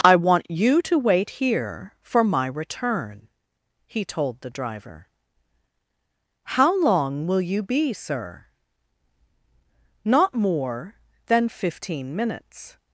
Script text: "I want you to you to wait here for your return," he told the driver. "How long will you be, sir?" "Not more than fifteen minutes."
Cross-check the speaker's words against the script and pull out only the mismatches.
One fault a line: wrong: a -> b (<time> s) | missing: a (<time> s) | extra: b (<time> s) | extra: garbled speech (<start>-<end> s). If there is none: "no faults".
missing: you to (1.0 s)
wrong: your -> my (2.2 s)